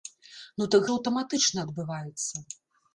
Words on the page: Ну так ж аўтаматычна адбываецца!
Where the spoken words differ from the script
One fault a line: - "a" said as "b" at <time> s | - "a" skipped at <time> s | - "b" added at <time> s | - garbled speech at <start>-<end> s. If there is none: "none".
none